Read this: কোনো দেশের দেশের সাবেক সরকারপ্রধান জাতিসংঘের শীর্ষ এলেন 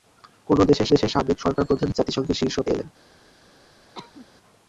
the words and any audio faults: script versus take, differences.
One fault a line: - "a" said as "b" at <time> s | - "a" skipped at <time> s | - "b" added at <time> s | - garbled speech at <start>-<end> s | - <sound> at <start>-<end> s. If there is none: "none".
- cough at 3.9-4.3 s